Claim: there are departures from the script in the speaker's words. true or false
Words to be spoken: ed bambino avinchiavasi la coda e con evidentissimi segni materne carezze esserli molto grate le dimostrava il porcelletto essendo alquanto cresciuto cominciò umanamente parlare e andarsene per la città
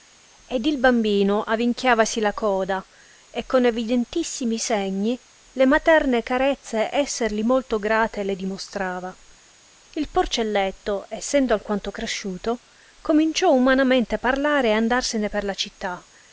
true